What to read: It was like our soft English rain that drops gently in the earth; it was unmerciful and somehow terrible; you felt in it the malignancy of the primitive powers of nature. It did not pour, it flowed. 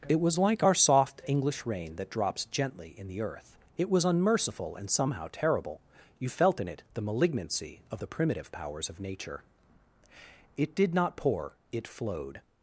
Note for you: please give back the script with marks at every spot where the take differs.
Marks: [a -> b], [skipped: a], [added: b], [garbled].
It was like our soft English rain that drops gently in the earth; it was unmerciful and somehow terrible; you felt in it the malignancy of the primitive powers of nature. It did not pour, it flowed.